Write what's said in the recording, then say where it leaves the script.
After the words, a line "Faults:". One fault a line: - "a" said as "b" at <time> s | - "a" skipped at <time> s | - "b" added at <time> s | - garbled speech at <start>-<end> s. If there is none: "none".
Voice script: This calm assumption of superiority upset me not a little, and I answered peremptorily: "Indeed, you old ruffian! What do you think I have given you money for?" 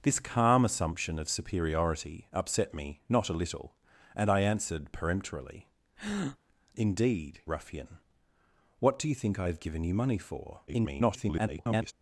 This calm assumption of superiority upset me not a little, and I answered peremptorily: "Indeed, ruffian! What do you think I have given you money for?" [garbled]
Faults:
- "you old" skipped at 7.4 s
- garbled speech at 10.7-11.9 s